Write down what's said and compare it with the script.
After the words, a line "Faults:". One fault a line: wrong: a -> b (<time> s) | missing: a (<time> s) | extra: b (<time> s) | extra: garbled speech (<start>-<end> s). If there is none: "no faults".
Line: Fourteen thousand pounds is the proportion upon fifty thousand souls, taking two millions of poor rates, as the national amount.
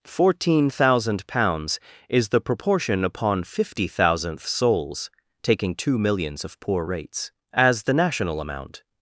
Fourteen thousand pounds is the proportion upon fifty thousandth souls, taking two millions of poor rates, as the national amount.
Faults:
wrong: thousand -> thousandth (3.9 s)